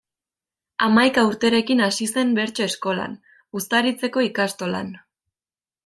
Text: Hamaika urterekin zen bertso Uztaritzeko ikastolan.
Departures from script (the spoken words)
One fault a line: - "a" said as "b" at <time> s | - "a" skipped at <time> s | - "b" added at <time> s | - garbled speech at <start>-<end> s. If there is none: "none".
- "hasi" added at 1.9 s
- "eskolan" added at 2.7 s